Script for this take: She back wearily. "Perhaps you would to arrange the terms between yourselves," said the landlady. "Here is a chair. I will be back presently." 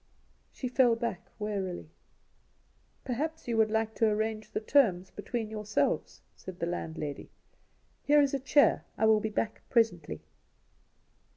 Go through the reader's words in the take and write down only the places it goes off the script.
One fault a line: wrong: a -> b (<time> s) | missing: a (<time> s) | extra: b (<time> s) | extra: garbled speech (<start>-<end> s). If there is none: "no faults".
extra: fell (0.7 s)
extra: like (3.7 s)